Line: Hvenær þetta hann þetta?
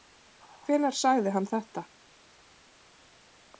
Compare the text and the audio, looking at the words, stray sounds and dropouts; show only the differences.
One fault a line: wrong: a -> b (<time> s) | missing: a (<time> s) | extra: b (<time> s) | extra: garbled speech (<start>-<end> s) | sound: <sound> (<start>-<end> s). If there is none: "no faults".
wrong: þetta -> sagði (1.0 s)